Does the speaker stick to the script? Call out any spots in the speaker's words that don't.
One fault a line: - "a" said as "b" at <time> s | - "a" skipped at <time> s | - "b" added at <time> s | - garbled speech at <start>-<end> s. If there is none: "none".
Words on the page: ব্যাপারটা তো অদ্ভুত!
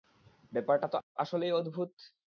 - "আসলেই" added at 1.2 s